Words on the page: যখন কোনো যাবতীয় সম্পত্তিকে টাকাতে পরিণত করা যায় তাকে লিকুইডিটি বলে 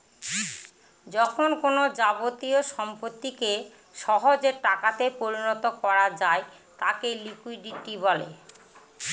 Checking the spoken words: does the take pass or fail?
fail